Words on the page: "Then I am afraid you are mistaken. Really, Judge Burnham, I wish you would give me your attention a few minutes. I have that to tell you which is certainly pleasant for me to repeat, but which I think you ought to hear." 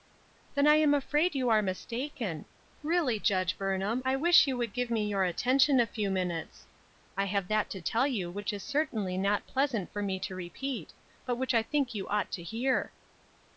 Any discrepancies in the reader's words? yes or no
yes